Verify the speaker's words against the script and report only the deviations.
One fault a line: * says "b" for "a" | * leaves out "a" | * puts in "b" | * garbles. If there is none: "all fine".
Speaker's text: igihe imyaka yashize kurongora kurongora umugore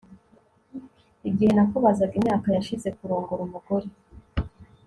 * puts in "nakubazaga"
* leaves out "kurongora"